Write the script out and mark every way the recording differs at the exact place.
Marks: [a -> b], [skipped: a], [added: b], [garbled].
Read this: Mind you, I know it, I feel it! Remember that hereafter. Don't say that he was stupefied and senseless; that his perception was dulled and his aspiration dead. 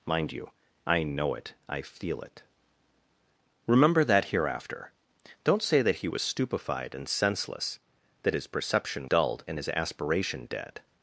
Mind you, I know it, I feel it! Remember that hereafter. Don't say that he was stupefied and senseless; that his perception [skipped: was] dulled and his aspiration dead.